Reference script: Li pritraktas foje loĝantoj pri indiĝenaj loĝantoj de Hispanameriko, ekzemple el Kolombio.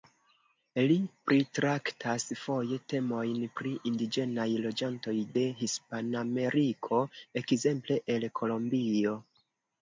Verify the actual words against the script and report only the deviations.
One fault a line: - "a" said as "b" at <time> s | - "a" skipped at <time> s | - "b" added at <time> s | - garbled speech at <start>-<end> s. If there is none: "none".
- "loĝantoj" said as "temojn" at 2.9 s